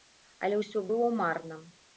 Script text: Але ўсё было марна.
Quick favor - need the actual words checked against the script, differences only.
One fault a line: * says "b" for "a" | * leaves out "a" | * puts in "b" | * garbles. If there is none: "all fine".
all fine